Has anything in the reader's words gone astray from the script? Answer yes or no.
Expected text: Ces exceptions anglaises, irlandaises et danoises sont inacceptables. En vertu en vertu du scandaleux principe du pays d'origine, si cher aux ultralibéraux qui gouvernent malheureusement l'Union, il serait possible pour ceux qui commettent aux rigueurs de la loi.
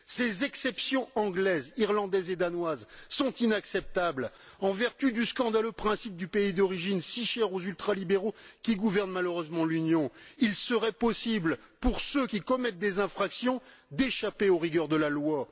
yes